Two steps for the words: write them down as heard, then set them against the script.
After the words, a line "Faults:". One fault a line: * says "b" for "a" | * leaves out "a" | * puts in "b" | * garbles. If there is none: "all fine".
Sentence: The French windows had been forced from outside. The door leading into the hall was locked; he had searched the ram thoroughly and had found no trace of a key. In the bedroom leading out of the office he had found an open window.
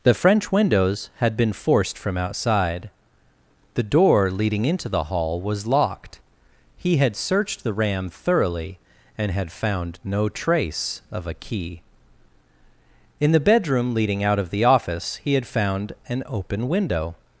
The French windows had been forced from outside. The door leading into the hall was locked; he had searched the ram thoroughly and had found no trace of a key. In the bedroom leading out of the office he had found an open window.
Faults:
all fine